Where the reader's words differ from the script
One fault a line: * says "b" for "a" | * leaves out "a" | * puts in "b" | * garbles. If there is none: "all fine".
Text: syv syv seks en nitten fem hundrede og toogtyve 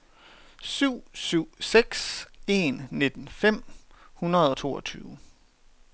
all fine